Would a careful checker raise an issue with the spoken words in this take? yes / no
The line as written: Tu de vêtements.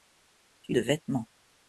no